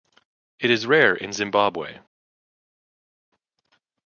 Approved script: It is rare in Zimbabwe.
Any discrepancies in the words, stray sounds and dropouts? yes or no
no